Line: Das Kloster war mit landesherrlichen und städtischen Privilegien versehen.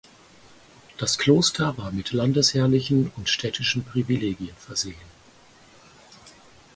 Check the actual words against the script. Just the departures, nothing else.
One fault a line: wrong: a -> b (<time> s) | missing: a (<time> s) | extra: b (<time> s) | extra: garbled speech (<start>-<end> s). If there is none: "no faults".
no faults